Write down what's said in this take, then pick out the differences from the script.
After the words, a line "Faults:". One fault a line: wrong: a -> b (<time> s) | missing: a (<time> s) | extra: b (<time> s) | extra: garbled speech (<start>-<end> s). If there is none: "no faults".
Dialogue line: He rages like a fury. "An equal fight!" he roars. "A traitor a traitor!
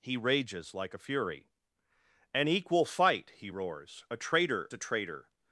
He rages like a fury. "An equal fight!" he roars. "A traitor a traitor!
Faults:
no faults